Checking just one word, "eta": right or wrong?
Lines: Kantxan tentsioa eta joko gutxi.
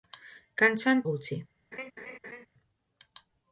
wrong